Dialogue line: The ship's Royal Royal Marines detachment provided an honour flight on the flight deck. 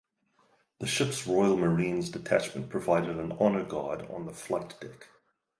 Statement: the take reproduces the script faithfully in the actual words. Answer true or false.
false